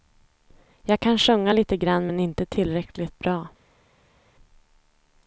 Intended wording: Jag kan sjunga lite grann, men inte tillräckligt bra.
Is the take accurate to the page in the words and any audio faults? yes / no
yes